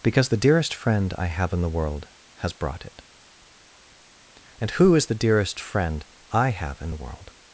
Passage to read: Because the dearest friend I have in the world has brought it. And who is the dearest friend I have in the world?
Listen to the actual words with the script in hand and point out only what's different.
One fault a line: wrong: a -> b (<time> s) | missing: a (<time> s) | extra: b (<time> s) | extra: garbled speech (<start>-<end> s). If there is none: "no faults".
no faults